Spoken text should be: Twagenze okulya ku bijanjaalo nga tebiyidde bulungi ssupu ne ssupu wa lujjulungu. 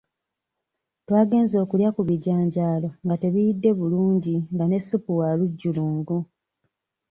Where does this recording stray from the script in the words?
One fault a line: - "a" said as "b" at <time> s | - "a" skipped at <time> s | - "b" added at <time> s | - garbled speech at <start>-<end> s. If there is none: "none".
- "ssupu" said as "nga" at 4.5 s